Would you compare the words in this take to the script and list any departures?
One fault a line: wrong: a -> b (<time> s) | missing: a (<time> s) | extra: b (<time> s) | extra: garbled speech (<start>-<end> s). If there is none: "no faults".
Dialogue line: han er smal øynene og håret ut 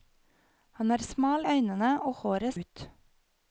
no faults